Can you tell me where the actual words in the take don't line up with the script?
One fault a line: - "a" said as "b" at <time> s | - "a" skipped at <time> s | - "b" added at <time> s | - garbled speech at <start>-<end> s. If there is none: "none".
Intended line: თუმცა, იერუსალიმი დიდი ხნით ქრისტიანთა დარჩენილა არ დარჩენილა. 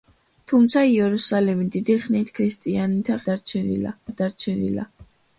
none